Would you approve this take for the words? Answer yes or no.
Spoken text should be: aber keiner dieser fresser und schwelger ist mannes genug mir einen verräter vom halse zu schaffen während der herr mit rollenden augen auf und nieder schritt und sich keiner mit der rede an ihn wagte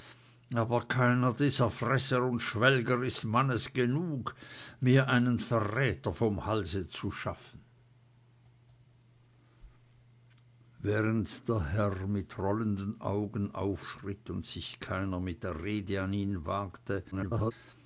no